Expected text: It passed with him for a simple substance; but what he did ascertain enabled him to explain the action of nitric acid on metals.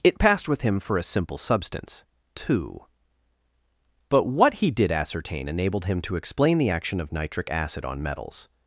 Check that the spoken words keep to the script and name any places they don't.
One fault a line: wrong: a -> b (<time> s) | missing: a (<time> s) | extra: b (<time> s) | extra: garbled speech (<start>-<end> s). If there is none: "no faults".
extra: two (2.4 s)